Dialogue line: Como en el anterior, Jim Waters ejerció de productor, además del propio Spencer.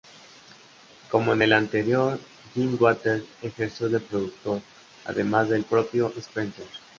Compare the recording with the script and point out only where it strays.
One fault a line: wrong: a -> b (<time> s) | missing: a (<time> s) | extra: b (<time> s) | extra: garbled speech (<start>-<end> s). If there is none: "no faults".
no faults